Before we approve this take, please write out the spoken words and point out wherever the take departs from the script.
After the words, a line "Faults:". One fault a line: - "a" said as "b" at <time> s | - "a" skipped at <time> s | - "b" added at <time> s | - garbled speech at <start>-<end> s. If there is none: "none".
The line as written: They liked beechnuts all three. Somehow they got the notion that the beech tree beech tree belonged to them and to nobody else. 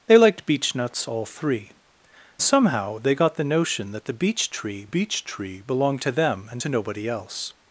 They liked beechnuts all three. Somehow they got the notion that the beech tree beech tree belonged to them and to nobody else.
Faults:
none